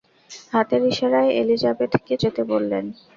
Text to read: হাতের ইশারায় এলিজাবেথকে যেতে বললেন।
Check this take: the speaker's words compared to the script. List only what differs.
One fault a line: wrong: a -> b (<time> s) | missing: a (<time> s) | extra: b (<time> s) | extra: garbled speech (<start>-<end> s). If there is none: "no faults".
no faults